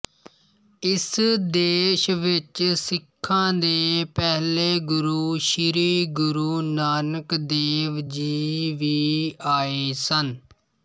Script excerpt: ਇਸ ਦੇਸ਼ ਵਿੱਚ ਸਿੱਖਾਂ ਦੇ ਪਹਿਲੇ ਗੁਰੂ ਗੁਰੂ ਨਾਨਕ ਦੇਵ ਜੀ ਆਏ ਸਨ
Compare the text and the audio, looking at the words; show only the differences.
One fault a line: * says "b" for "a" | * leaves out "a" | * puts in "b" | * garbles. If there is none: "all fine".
* puts in "ਸ੍ਰੀ"
* puts in "ਵੀ"